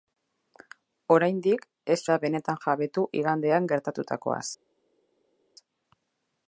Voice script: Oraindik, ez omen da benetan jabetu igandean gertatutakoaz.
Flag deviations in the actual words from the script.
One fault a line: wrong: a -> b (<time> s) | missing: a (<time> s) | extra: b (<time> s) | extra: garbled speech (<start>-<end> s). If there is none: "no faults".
missing: omen (2.0 s)